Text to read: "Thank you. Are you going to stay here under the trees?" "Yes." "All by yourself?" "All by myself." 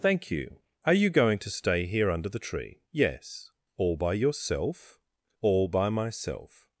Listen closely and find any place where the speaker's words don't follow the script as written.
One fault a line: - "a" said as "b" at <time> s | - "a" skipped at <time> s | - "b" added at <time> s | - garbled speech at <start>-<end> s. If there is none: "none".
- "trees" said as "tree" at 2.4 s